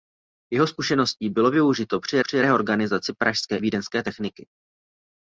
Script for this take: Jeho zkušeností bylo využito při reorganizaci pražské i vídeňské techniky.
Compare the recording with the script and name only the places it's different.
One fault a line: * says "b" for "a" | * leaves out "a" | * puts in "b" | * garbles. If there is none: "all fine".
* puts in "při"
* leaves out "i"